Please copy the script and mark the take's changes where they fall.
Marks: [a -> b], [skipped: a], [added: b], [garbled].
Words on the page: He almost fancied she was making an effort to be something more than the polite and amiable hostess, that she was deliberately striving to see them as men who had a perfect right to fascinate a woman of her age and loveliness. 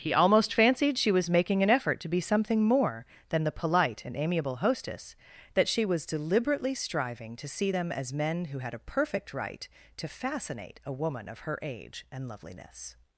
He almost fancied she was making an effort to be something more than the polite and amiable hostess, that she was deliberately striving to see them as men who had a perfect right to fascinate a woman of her age and loveliness.